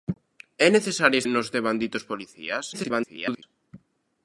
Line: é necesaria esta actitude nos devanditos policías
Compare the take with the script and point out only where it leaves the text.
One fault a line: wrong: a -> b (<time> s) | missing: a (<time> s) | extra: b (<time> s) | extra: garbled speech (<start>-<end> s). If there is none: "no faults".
missing: esta actitude (1.2 s)
extra: garbled speech (2.7-3.4 s)